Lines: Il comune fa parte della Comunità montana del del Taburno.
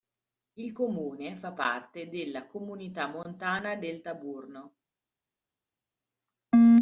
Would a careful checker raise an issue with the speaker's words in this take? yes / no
yes